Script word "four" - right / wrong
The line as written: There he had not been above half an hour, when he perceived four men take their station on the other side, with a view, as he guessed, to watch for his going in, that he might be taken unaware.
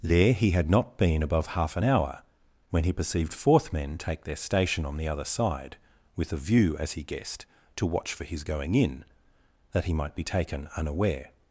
wrong